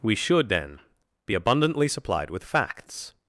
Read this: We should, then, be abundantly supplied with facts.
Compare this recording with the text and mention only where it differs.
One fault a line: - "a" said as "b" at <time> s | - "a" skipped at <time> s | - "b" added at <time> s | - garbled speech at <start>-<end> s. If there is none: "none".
none